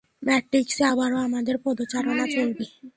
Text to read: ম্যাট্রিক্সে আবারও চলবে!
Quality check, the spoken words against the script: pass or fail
fail